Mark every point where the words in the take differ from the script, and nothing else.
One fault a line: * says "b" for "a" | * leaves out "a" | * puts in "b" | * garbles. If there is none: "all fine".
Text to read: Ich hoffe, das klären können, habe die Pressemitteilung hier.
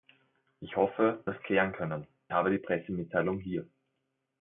all fine